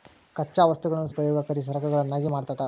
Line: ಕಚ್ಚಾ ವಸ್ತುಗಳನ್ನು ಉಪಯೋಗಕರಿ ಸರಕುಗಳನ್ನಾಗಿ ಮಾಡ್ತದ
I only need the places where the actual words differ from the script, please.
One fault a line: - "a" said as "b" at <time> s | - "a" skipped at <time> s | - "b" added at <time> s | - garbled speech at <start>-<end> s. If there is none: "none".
none